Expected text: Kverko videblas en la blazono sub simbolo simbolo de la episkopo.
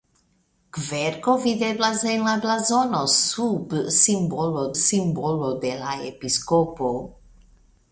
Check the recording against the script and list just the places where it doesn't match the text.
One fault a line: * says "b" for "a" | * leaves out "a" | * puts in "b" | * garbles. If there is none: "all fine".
all fine